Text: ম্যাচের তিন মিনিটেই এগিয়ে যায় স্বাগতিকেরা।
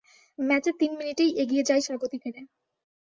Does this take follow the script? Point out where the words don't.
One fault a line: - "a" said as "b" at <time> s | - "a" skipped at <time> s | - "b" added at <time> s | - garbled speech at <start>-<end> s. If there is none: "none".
none